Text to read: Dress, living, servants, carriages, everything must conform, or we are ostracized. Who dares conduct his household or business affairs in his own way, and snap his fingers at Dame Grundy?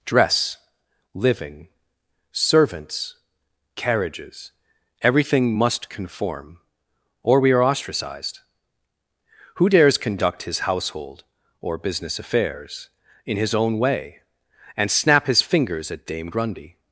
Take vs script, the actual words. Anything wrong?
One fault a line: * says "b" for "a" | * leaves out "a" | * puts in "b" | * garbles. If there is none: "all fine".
all fine